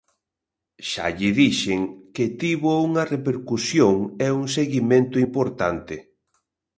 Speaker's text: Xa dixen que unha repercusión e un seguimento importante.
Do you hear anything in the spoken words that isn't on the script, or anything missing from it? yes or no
yes